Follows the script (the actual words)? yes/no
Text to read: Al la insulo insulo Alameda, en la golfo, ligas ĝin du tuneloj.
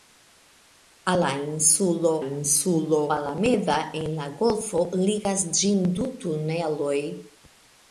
yes